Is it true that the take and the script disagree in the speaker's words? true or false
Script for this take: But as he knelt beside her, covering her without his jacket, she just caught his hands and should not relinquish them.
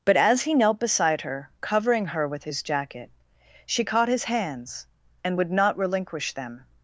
true